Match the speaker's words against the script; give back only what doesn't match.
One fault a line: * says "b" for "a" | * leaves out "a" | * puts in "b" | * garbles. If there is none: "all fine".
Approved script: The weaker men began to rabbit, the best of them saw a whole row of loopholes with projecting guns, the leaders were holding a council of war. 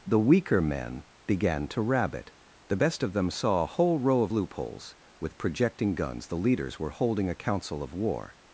all fine